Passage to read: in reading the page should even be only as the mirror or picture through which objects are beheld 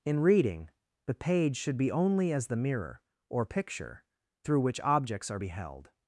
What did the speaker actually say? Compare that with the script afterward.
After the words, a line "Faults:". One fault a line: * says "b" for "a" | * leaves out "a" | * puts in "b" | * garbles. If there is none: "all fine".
in reading the page should be only as the mirror or picture through which objects are beheld
Faults:
* leaves out "even"